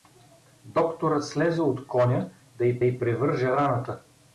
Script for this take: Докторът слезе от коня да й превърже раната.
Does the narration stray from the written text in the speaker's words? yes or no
yes